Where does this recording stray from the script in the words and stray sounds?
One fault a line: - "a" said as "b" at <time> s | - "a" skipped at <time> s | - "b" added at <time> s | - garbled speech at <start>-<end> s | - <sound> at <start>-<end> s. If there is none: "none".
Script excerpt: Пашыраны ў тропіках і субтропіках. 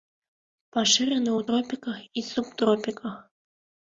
none